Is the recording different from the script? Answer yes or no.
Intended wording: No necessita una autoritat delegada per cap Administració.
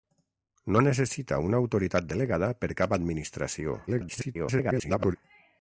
yes